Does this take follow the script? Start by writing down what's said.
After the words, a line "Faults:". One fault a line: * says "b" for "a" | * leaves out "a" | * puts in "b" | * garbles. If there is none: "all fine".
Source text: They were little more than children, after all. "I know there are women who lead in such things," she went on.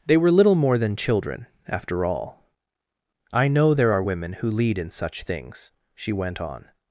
They were little more than children, after all. "I know there are women who lead in such things," she went on.
Faults:
all fine